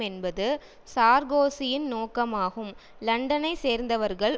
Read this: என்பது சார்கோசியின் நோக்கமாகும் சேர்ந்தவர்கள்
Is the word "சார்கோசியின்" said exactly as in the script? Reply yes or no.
yes